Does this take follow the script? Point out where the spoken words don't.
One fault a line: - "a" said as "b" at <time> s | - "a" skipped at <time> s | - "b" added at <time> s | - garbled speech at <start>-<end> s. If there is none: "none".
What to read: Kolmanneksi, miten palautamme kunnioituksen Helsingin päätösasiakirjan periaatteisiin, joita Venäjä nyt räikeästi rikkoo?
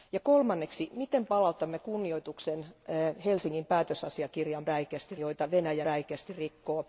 - "periaatteisiin" said as "räikeästi" at 4.6 s
- "nyt" skipped at 5.9 s